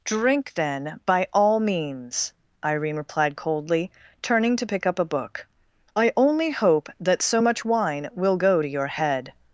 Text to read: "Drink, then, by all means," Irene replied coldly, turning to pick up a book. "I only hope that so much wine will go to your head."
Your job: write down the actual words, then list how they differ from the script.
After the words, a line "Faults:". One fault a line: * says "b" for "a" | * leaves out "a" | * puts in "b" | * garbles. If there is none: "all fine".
"Drink, then, by all means," Irene replied coldly, turning to pick up a book. "I only hope that so much wine will go to your head."
Faults:
all fine